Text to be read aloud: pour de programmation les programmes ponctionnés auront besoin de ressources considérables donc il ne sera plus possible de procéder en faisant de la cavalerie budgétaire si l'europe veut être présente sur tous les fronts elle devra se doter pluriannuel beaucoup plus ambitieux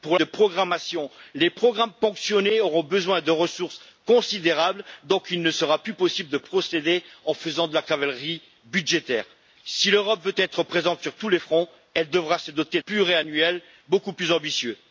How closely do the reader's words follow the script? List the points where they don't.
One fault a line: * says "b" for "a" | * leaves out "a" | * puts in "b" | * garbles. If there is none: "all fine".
all fine